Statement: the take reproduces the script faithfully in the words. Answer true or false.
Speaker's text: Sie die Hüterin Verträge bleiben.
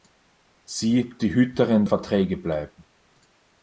true